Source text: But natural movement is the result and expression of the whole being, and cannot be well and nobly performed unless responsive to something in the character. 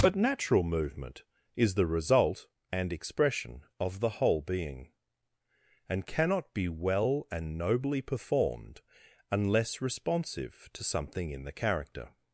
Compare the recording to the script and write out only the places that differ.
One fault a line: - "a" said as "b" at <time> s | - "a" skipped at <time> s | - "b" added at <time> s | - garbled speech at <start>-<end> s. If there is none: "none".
none